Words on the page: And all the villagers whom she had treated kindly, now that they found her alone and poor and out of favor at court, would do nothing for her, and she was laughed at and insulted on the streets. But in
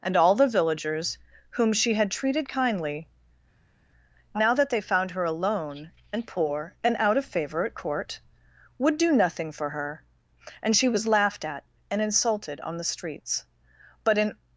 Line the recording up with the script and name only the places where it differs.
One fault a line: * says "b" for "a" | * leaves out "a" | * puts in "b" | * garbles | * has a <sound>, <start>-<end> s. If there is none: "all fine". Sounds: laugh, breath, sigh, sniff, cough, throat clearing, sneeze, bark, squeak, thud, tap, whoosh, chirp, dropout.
all fine